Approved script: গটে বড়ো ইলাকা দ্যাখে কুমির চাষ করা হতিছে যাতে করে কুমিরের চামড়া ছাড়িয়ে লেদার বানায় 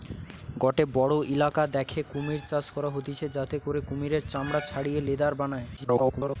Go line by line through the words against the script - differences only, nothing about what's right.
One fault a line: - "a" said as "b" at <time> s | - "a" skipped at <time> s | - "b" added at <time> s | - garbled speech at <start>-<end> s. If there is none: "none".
- garbled speech at 5.8-6.4 s